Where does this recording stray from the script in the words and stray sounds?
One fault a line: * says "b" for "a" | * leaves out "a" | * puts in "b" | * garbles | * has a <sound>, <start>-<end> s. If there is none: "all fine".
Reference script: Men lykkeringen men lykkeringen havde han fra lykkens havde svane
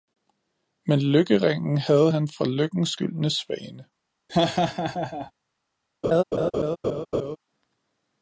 * leaves out "men lykkeringen"
* says "gyldne" for "havde"
* has a laugh, 4.3-5.3 s
* has a laugh, 6.0-7.4 s